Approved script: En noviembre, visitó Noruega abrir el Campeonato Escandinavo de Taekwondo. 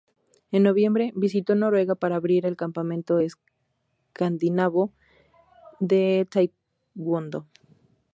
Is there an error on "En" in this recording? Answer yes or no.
no